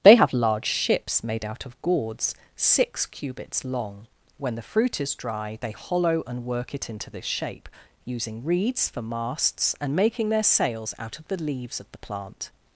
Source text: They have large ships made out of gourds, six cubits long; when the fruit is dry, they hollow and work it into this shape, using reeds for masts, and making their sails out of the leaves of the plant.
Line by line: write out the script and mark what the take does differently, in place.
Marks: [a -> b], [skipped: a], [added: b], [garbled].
They have large ships made out of gourds, six cubits long; when the fruit is dry, they hollow and work it into this shape, using reeds for masts, and making their sails out of the leaves of the plant.